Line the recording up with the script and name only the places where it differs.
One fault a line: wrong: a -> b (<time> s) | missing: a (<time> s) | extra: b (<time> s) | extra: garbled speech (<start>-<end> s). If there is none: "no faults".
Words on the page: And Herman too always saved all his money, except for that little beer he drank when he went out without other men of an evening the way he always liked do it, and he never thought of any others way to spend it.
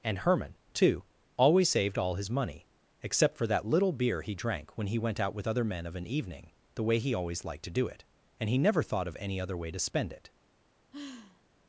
wrong: without -> with (5.3 s)
extra: to (7.7 s)
wrong: others -> other (9.4 s)